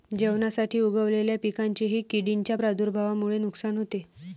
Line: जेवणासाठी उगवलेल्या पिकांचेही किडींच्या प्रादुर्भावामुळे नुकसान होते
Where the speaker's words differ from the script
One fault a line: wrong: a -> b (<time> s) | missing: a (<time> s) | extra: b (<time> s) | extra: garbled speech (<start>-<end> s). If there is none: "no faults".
no faults